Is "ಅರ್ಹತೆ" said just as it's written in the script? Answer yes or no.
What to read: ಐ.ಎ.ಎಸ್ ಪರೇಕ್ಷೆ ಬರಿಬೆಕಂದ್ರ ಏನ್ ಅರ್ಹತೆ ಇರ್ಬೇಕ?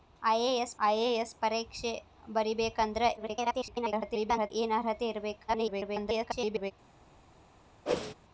yes